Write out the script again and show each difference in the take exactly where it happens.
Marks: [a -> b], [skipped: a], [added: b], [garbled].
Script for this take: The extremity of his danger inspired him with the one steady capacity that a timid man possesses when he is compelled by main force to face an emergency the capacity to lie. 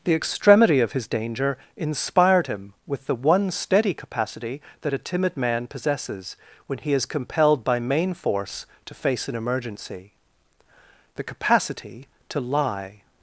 The extremity of his danger inspired him with the one steady capacity that a timid man possesses when he is compelled by main force to face an emergency the capacity to lie.